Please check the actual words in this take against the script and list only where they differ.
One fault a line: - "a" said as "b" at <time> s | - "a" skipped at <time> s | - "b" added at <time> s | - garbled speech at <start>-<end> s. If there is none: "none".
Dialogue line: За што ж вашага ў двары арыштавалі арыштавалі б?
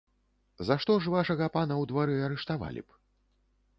- "пана" added at 1.6 s
- "арыштавалі" skipped at 2.8 s